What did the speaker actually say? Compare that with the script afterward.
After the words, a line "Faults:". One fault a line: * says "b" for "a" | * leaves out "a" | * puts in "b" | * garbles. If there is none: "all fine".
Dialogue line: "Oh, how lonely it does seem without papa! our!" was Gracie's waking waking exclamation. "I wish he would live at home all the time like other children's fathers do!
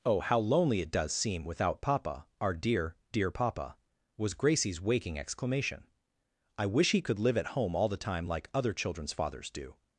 "Oh, how lonely it does seem without papa! our dear, dear papa!" was Gracie's waking exclamation. "I wish he could live at home all the time like other children's fathers do!
Faults:
* puts in "dear dear papa"
* leaves out "waking"
* says "could" for "would"